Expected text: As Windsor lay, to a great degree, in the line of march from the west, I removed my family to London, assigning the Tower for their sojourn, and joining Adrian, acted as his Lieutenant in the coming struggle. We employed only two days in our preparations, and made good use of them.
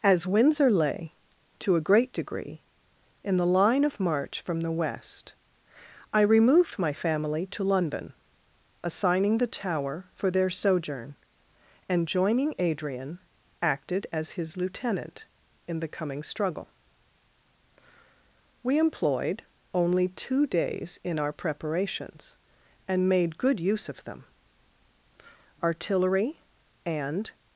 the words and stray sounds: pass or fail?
fail